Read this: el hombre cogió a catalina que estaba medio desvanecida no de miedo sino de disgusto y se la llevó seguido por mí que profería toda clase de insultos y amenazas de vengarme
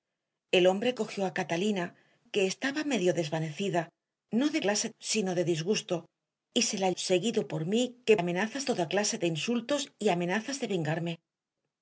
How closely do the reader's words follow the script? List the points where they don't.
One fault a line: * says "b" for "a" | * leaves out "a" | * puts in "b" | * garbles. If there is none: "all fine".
* says "clase" for "miedo"
* leaves out "llevó"
* says "amenazas" for "profería"